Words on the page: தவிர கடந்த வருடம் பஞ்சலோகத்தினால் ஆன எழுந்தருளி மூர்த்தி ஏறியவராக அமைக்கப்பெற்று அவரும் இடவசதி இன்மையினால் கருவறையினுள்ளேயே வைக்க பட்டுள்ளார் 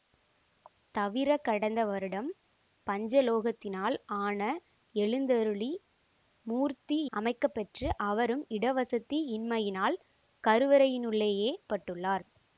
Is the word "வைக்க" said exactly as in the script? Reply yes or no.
no